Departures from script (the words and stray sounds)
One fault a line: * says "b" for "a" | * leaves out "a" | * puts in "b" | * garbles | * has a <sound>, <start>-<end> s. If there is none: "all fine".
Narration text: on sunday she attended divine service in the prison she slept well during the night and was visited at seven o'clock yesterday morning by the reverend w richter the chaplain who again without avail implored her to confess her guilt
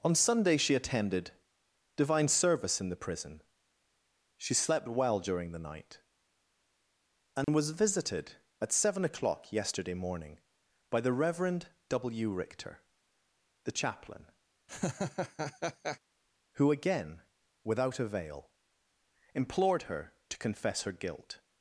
* has a dropout, 7.4-7.5 s
* has a laugh, 14.7-16.0 s